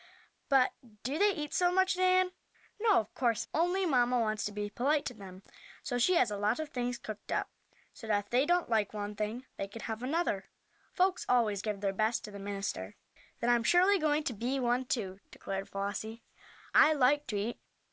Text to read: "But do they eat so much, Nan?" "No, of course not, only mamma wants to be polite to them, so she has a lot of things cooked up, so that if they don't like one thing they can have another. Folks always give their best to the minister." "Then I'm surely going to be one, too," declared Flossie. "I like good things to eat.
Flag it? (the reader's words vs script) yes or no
yes